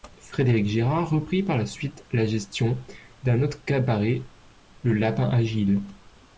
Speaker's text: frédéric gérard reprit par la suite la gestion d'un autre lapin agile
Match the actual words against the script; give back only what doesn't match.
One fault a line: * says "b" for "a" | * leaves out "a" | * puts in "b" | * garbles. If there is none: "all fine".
* puts in "cabaret le"